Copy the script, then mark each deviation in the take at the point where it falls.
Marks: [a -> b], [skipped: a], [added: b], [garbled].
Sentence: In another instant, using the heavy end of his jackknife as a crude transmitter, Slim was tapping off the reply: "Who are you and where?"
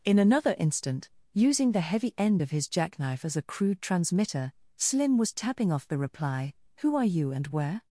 In another instant, using the heavy end of his jackknife as a crude transmitter, Slim was tapping off the reply: "Who are you and where?"